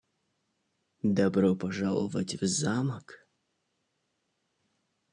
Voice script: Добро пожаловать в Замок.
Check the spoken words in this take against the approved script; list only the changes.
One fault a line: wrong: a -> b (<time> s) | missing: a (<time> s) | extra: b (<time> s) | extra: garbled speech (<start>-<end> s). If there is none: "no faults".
no faults